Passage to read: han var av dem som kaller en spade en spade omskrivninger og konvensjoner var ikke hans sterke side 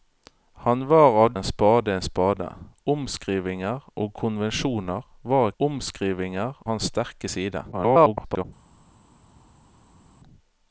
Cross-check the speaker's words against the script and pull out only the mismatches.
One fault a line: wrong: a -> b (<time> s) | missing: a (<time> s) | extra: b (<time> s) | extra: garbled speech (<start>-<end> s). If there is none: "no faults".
missing: dem som kaller (1.3 s)
wrong: ikke -> omskrivninger (5.6 s)
extra: garbled speech (7.7-8.4 s)